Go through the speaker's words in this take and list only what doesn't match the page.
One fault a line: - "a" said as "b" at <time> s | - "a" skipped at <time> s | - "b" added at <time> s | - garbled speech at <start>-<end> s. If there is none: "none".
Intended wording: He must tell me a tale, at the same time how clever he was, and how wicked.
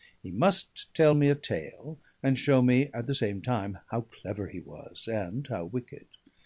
- "and show me" added at 2.2 s